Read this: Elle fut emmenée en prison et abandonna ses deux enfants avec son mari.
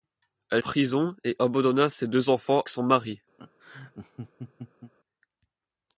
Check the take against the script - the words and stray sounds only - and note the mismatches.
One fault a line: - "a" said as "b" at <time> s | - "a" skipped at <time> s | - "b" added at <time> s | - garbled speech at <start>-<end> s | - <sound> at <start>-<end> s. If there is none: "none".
- "fut emmenée en" skipped at 0.6 s
- "avec" skipped at 2.6 s
- laugh at 3.4-4.9 s